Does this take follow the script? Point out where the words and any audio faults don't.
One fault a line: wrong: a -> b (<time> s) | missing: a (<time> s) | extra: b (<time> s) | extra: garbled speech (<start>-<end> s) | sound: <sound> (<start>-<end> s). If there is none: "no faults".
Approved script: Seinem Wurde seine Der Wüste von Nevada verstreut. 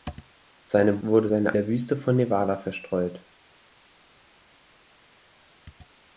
no faults